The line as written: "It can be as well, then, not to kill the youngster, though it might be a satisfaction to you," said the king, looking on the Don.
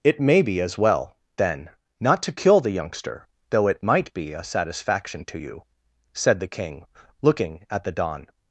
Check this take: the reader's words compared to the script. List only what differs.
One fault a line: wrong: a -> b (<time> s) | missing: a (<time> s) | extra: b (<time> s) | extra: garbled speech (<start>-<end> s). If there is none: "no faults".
wrong: can -> may (0.2 s)
wrong: on -> at (7.7 s)